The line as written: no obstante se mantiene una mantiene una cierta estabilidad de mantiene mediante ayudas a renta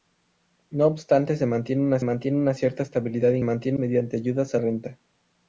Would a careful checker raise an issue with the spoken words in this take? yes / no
no